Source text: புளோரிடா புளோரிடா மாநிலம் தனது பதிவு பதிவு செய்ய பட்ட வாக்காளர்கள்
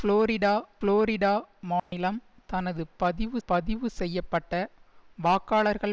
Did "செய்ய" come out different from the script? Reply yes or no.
no